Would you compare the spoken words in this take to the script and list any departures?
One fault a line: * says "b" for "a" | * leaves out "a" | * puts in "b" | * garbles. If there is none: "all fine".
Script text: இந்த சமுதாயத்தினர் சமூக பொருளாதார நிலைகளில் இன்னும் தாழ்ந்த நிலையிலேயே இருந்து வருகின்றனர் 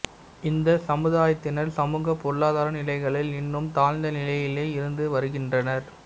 all fine